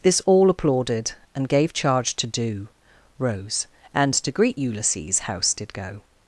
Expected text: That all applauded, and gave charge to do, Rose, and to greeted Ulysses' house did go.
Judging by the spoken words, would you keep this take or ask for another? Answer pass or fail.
fail